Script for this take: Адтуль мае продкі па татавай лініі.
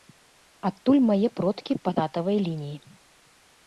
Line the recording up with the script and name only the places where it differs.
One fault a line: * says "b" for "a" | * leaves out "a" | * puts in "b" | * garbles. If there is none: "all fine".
all fine